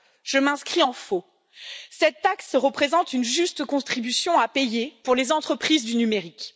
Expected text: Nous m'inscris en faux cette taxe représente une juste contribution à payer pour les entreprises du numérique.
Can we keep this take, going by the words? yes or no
no